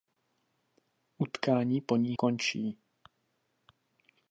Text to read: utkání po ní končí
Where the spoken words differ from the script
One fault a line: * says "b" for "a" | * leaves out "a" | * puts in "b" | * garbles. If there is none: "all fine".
all fine